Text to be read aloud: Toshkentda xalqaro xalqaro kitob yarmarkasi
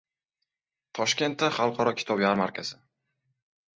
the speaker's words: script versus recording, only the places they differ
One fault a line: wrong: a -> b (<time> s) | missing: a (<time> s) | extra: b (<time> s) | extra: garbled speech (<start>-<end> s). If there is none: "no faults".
missing: xalqaro (1.9 s)